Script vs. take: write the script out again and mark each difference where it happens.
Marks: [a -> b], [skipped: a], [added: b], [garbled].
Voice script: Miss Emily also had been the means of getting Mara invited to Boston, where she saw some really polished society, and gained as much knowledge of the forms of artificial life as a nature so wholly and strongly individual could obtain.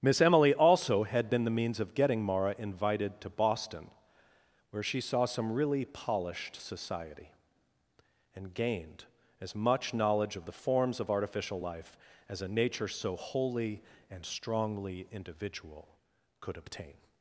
Miss Emily also had been the means of getting Mara invited to Boston, where she saw some really polished society, and gained as much knowledge of the forms of artificial life as a nature so wholly and strongly individual could obtain.